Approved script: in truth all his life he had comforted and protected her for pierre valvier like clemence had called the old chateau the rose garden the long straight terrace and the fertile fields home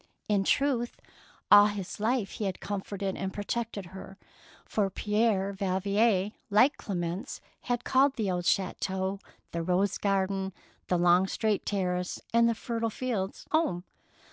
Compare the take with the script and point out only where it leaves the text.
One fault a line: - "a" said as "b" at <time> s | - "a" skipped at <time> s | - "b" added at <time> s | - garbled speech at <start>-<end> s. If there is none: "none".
none